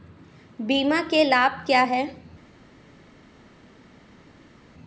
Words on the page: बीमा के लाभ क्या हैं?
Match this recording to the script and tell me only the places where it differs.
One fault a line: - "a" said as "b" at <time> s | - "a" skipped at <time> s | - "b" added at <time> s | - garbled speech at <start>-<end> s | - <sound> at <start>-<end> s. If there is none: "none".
none